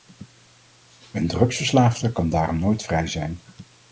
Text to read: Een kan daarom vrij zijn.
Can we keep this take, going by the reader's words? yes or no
no